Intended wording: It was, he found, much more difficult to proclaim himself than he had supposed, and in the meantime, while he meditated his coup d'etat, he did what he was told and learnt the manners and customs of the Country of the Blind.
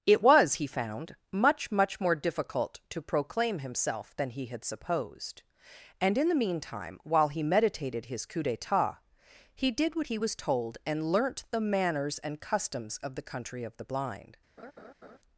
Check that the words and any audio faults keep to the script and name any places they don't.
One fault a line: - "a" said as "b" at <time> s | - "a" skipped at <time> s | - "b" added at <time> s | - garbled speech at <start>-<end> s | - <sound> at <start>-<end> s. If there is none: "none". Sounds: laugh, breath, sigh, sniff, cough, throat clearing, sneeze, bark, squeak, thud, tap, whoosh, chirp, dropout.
- "much" added at 1.7 s
- laugh at 14.6-15.2 s